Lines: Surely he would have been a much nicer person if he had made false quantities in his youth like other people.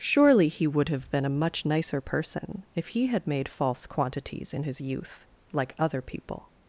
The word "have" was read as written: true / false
true